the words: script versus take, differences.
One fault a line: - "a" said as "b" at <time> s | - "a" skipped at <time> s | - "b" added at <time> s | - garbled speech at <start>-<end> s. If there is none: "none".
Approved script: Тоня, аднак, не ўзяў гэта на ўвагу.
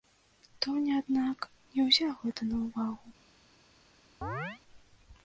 none